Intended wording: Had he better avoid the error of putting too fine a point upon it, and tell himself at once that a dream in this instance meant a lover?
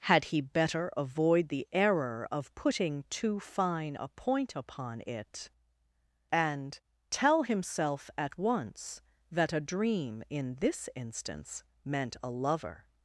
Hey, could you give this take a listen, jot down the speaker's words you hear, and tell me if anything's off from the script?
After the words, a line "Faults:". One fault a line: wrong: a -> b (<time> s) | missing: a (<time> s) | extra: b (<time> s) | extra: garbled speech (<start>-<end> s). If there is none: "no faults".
Had he better avoid the error of putting too fine a point upon it, and tell himself at once that a dream in this instance meant a lover?
Faults:
no faults